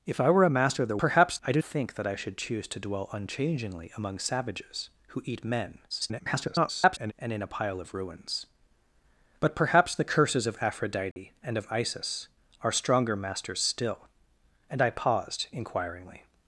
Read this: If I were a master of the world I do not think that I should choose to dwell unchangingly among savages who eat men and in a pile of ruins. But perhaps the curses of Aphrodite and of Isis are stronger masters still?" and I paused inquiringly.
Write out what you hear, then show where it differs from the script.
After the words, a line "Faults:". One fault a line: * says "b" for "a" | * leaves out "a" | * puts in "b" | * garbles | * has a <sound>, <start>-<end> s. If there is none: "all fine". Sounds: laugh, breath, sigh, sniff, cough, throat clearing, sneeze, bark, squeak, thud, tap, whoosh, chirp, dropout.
If I were a master of the perhaps I do think that I should choose to dwell unchangingly among savages who eat men [garbled] and in a pile of ruins. But perhaps the curses of Aphrodite and of Isis are stronger masters still?" and I paused inquiringly.
Faults:
* says "perhaps" for "world"
* leaves out "not"
* garbles
* has a dropout, 11.1-11.2 s